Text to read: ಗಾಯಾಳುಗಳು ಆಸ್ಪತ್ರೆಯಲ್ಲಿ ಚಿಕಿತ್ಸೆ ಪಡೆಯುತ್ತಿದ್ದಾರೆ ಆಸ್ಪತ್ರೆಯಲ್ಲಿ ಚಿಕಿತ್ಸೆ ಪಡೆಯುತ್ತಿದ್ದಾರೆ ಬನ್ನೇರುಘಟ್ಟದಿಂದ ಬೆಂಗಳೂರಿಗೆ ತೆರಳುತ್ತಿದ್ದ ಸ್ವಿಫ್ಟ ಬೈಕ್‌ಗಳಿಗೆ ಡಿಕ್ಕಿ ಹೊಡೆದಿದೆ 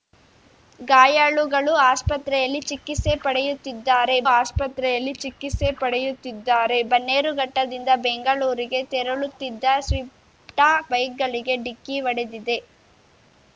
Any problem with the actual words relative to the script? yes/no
no